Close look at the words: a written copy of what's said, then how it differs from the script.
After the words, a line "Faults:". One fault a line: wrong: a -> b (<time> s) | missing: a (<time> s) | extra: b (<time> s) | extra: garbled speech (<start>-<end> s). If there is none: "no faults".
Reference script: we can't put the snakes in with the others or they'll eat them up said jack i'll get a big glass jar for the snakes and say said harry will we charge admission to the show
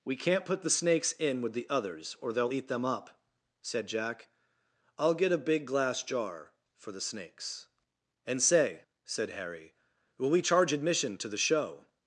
we can't put the snakes in with the others or they'll eat them up said jack i'll get a big glass jar for the snakes and say said harry will we charge admission to the show
Faults:
no faults